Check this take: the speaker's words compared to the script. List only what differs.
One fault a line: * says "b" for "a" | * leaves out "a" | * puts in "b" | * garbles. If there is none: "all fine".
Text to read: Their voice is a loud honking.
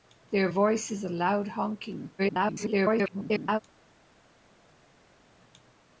* garbles